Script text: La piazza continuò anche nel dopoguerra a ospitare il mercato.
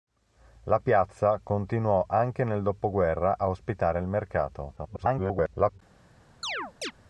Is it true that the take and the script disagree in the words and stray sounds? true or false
true